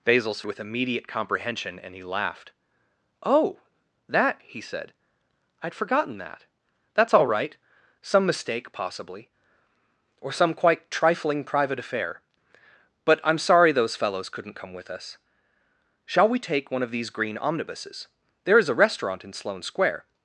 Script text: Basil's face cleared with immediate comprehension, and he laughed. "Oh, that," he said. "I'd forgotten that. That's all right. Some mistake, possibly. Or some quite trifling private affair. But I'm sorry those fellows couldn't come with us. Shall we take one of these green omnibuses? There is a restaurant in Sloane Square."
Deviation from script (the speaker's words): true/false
true